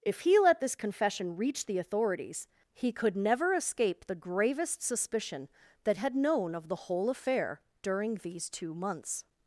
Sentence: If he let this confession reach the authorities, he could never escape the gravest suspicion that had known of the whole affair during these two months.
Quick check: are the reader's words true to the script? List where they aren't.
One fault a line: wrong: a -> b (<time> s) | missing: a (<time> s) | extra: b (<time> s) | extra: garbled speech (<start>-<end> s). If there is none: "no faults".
no faults